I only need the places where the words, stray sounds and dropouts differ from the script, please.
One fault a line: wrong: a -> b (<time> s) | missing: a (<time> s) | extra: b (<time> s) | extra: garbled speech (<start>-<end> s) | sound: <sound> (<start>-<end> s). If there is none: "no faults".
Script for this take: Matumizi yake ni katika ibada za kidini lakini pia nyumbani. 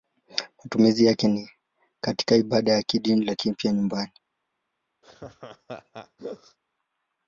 sound: laugh (5.0-6.6 s)